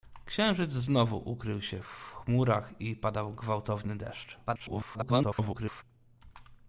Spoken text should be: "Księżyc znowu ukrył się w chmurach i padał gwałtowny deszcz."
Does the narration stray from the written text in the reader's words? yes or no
yes